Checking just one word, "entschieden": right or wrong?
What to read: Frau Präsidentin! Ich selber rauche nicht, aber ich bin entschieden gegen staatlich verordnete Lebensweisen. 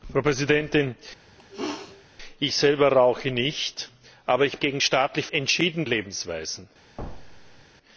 wrong